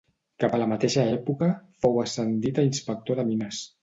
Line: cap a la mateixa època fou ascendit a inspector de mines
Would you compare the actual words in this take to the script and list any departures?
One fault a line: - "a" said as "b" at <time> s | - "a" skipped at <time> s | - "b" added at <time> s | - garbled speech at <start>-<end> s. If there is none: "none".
none